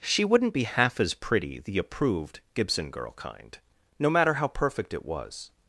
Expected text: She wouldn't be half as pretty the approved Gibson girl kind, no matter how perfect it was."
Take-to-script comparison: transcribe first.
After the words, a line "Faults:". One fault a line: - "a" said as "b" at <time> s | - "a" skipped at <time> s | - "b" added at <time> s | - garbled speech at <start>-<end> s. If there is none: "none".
She wouldn't be half as pretty the approved Gibson girl kind, no matter how perfect it was."
Faults:
none